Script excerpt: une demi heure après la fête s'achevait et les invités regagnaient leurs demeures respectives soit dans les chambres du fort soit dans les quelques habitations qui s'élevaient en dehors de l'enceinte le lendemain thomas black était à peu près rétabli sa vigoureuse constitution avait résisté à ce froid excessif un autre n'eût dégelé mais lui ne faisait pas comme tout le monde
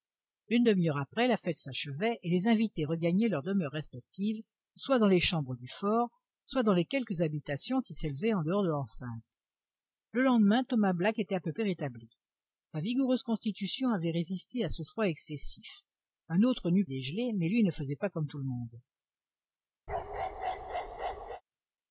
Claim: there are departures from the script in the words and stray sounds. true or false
true